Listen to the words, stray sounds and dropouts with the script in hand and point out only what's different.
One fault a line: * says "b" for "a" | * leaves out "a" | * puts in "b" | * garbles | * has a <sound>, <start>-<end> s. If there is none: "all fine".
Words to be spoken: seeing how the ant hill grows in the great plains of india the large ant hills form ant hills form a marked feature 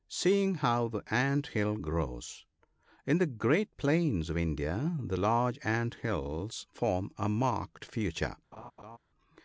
* leaves out "ant hills form"
* has a laugh, 8.5-9.0 s